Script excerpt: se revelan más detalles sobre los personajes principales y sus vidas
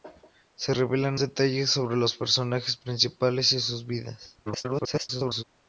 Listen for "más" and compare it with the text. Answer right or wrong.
wrong